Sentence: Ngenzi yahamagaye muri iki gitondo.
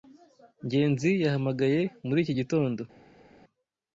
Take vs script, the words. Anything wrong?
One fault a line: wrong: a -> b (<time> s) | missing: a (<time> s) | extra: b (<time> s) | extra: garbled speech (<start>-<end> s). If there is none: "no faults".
no faults